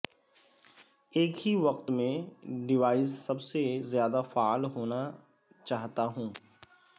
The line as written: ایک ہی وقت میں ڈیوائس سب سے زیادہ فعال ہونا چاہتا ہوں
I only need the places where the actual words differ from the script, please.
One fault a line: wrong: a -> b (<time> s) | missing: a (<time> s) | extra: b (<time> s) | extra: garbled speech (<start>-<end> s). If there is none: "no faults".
no faults